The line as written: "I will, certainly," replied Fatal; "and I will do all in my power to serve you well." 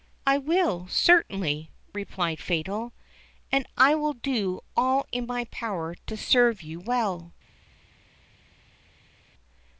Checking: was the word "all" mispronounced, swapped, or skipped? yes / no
no